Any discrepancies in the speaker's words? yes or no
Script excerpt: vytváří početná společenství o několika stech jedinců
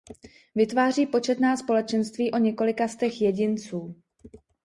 no